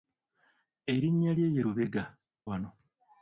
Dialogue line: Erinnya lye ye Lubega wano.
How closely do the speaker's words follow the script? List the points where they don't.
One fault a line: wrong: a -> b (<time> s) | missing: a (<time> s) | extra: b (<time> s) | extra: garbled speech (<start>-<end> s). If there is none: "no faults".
no faults